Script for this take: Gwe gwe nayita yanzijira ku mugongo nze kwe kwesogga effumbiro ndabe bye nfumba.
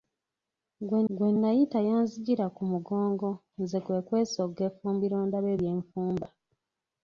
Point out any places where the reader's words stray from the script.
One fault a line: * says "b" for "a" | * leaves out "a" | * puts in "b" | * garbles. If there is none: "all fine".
all fine